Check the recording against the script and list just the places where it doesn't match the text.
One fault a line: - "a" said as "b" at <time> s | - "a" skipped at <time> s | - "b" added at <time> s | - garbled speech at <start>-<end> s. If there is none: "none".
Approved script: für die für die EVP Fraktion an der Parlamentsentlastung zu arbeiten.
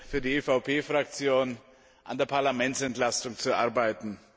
- "für die" skipped at 0.3 s